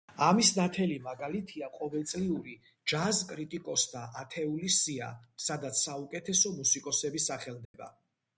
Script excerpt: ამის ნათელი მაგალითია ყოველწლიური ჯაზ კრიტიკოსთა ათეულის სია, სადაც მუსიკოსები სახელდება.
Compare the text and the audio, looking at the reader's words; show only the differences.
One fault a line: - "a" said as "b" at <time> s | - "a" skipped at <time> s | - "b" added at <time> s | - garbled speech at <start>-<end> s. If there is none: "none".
- "საუკეთესო" added at 5.8 s